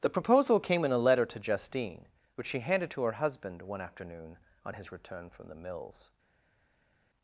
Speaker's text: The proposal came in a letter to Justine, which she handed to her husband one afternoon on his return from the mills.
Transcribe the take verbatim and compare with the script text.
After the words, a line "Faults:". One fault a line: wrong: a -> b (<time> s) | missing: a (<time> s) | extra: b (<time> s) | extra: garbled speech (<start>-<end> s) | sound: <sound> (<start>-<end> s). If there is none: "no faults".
The proposal came in a letter to Justine, which she handed to her husband one afternoon on his return from the mills.
Faults:
no faults